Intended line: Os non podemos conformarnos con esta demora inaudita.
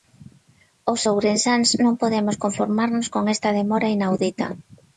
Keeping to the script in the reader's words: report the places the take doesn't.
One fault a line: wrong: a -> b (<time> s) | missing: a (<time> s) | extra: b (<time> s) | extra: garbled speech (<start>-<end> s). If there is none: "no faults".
extra: ourensáns (1.1 s)